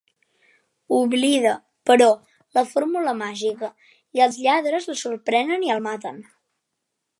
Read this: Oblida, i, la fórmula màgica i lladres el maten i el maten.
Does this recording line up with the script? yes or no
no